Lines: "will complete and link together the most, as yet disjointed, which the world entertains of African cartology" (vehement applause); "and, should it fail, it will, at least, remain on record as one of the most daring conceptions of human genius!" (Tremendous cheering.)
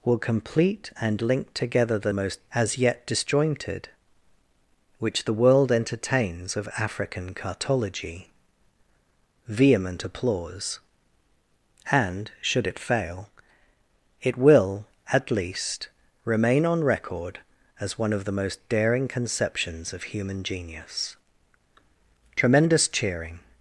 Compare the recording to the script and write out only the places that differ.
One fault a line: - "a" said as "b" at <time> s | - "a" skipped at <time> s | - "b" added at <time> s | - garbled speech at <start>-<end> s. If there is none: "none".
none